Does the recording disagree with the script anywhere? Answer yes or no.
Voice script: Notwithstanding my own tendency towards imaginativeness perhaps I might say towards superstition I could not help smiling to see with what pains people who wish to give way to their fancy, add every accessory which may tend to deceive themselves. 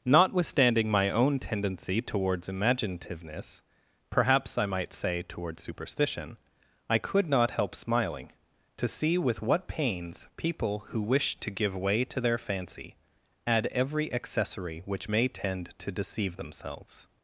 no